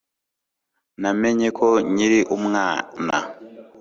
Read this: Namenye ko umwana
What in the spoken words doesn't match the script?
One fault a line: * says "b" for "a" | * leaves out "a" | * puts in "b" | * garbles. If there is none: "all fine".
* puts in "nkiri"